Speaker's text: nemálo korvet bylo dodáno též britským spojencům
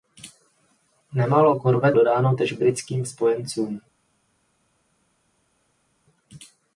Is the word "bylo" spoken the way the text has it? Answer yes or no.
no